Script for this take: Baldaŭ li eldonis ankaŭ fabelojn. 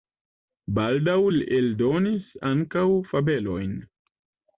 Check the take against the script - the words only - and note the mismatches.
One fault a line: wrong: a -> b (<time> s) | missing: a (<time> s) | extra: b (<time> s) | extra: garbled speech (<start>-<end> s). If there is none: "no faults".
no faults